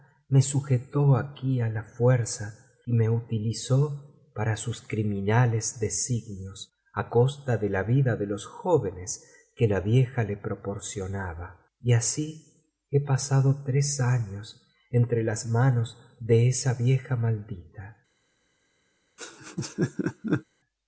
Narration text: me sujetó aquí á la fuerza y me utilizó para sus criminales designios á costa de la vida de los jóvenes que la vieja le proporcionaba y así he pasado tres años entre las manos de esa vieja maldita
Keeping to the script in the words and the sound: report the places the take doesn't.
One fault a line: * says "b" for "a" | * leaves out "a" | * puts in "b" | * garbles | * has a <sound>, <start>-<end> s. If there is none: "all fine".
* has a laugh, 19.2-20.4 s